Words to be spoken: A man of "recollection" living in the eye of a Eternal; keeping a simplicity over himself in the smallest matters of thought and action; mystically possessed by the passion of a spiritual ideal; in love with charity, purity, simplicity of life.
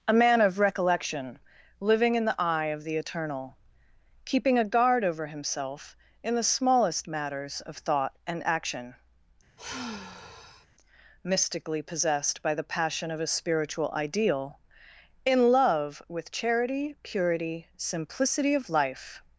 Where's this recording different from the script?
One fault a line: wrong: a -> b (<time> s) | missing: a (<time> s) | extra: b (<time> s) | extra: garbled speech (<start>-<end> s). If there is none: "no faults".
wrong: a -> the (2.8 s)
wrong: simplicity -> guard (4.7 s)